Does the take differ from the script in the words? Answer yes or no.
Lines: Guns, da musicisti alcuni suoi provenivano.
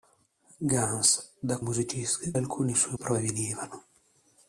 no